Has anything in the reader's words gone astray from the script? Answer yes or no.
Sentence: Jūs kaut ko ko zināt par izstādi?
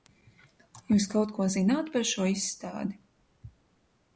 yes